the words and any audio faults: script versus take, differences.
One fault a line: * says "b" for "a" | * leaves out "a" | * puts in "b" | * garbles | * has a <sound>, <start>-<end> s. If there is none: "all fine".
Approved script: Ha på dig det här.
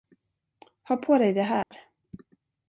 * has a dropout, 1.6-1.7 s